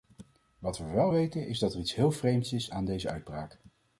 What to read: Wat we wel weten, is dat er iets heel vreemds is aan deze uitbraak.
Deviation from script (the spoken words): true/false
false